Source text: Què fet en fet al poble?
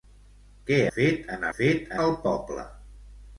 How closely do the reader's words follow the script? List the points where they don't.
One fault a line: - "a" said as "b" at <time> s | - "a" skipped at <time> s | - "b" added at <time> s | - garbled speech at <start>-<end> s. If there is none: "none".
none